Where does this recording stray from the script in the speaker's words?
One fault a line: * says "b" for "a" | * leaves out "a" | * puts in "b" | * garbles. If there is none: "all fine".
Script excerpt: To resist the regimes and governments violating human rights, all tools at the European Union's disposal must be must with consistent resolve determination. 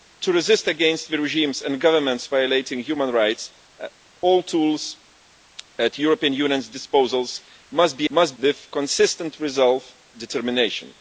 all fine